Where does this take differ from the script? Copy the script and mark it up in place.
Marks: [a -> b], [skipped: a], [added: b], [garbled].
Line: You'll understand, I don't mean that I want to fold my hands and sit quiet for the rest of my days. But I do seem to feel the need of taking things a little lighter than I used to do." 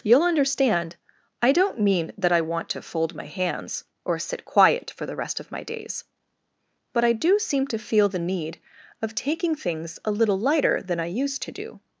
You'll understand, I don't mean that I want to fold my hands [and -> or] sit quiet for the rest of my days. But I do seem to feel the need of taking things a little lighter than I used to do."